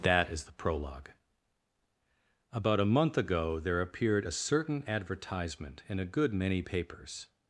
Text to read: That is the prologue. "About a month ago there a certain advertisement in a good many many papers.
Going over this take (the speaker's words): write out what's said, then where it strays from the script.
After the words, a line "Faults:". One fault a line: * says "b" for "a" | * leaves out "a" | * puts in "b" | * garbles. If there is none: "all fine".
That is the prologue. "About a month ago there appeared a certain advertisement in a good many papers.
Faults:
* puts in "appeared"
* leaves out "many"